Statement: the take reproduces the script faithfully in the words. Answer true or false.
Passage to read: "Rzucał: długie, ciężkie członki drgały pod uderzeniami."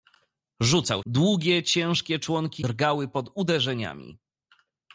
true